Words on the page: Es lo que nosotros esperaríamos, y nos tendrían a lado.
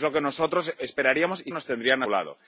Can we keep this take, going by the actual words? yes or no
yes